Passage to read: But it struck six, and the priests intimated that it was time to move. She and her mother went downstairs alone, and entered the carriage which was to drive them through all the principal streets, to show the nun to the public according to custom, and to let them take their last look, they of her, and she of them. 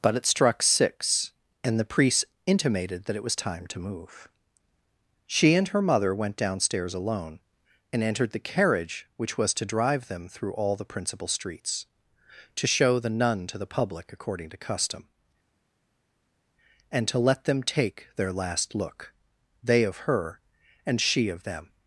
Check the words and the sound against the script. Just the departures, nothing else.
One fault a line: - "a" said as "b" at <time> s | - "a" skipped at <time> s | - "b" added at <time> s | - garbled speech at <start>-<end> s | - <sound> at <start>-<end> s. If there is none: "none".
- "priests" said as "priest" at 1.9 s